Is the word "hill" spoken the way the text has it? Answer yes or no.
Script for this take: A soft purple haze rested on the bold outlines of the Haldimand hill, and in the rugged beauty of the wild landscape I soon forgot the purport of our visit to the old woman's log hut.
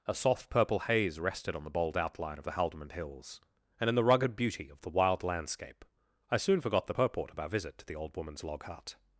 no